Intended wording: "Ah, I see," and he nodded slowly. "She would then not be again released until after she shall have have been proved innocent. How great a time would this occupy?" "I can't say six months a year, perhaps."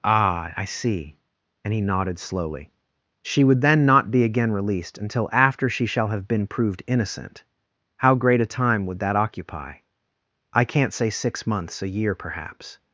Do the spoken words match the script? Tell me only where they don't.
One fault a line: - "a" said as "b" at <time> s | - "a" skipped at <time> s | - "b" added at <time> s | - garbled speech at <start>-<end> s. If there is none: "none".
- "have" skipped at 6.3 s
- "this" said as "that" at 9.0 s